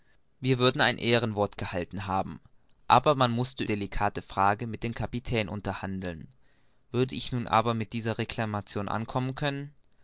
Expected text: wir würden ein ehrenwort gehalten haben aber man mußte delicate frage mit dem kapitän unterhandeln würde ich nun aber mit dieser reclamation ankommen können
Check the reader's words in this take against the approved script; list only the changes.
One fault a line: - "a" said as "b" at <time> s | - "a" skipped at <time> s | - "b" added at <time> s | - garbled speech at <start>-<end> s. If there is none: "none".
none